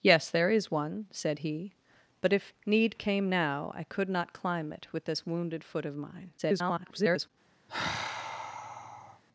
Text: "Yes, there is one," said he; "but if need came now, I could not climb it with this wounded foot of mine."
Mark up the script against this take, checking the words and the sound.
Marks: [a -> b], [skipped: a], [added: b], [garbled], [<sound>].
"Yes, there is one," said he; "but if need came now, I could not climb it with this wounded foot of mine." [garbled] [sigh]